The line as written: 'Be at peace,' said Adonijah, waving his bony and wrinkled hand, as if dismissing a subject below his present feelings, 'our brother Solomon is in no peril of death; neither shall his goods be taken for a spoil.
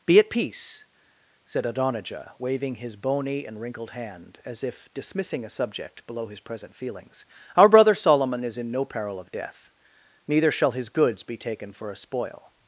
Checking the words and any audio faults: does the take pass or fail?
pass